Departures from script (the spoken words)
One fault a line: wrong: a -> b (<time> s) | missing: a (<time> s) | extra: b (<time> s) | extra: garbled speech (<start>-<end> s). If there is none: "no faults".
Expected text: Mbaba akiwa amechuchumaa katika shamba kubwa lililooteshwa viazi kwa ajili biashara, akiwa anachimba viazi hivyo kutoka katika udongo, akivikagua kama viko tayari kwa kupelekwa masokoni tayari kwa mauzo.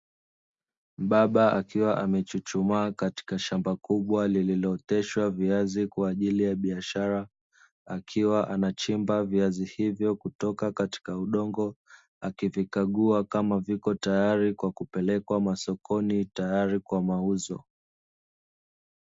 extra: ya (6.4 s)